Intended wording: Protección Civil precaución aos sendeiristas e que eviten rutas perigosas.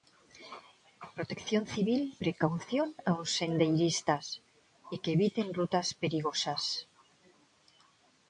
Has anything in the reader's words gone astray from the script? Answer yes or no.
no